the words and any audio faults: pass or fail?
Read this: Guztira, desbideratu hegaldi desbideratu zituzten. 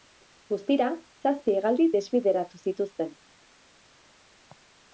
fail